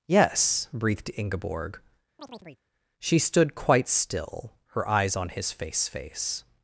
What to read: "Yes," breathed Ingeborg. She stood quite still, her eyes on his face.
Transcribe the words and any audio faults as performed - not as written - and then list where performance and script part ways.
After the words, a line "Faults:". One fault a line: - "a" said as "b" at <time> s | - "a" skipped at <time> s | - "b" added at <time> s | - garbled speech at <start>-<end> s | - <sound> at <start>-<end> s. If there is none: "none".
"Yes," breathed Ingeborg. She stood quite still, her eyes on his face face.
Faults:
- chirp at 2.2-2.6 s
- "face" added at 5.8 s